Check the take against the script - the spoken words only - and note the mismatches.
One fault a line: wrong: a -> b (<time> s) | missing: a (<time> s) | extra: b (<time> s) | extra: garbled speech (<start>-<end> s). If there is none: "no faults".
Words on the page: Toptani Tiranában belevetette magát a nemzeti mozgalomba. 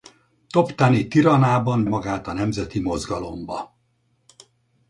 missing: belevetette (1.9 s)